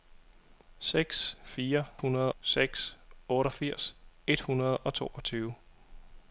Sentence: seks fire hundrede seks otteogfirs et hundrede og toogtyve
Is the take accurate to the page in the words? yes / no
yes